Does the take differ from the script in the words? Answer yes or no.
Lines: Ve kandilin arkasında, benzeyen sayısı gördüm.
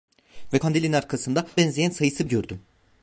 no